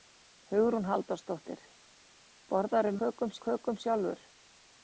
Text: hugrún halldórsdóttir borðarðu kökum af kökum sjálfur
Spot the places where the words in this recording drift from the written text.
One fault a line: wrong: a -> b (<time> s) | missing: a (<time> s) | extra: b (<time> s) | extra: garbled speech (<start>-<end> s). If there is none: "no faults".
no faults